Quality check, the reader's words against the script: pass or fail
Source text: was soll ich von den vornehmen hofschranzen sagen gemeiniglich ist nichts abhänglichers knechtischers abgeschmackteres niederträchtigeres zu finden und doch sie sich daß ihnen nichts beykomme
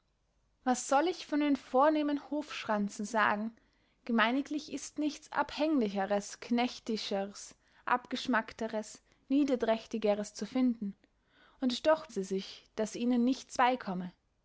pass